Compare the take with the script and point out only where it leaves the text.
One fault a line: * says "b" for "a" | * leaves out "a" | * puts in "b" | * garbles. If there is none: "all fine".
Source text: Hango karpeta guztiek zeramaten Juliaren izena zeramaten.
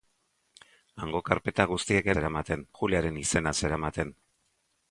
all fine